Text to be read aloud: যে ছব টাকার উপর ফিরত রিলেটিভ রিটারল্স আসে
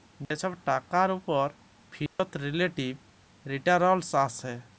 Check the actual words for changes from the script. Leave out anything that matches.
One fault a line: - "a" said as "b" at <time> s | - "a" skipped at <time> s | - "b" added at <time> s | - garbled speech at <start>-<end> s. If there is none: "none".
none